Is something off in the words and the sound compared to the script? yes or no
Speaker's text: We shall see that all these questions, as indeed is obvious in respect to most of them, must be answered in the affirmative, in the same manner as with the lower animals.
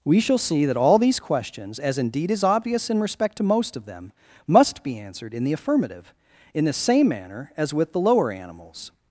no